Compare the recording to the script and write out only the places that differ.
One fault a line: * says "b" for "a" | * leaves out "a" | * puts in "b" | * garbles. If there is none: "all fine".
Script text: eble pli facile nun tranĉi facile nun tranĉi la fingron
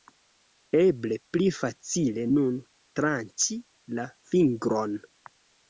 * leaves out "facile nun tranĉi"